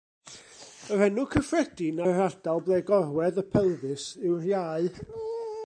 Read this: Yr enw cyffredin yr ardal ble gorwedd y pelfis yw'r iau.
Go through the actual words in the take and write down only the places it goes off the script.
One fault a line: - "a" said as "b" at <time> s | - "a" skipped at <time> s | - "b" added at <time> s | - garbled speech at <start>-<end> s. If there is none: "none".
none